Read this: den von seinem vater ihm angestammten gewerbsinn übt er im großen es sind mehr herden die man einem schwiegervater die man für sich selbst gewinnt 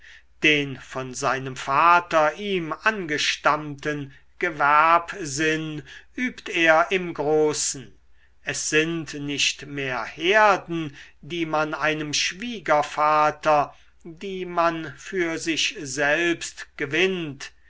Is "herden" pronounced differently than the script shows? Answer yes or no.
no